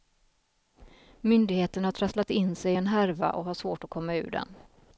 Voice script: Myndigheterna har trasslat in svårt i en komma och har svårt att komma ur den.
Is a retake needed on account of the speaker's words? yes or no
yes